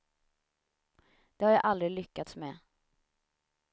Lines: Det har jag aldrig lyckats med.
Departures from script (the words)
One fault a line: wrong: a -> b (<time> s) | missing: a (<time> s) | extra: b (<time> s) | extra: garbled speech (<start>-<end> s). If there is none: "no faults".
no faults